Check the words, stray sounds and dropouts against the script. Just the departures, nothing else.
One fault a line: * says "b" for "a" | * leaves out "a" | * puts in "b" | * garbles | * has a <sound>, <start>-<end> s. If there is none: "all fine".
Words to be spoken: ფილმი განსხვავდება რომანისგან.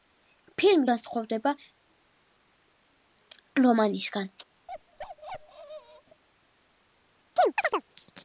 * has a bark, 4.7-6.2 s
* has a chirp, 7.4-7.8 s